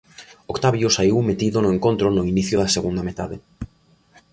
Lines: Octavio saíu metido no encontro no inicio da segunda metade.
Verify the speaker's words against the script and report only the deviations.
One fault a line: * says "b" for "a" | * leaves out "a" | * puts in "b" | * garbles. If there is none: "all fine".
all fine